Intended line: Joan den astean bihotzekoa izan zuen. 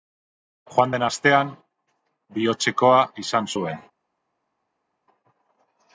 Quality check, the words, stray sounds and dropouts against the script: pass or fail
pass